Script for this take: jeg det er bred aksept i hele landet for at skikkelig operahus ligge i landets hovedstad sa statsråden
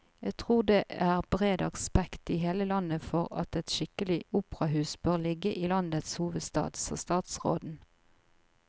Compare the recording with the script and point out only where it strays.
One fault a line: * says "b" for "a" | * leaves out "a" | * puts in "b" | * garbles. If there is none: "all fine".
* puts in "tror"
* puts in "et"
* puts in "bør"